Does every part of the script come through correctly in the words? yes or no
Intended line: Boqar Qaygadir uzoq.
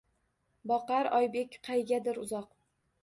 no